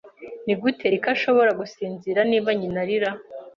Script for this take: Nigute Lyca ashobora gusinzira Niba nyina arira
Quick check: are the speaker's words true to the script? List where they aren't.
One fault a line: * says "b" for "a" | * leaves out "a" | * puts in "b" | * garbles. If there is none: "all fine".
all fine